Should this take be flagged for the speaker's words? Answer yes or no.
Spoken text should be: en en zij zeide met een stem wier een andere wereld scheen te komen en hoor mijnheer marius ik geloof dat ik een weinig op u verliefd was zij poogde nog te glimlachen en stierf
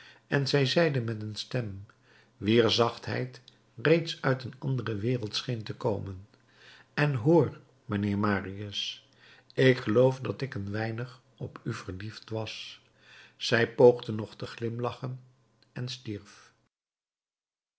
yes